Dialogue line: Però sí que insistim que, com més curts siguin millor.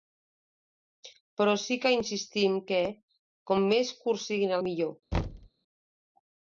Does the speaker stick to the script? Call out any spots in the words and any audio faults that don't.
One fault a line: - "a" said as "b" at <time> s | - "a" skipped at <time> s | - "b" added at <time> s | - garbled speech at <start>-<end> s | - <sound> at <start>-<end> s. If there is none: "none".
- thud at 5.1-5.5 s